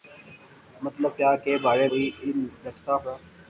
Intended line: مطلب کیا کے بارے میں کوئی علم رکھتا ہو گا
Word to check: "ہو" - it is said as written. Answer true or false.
false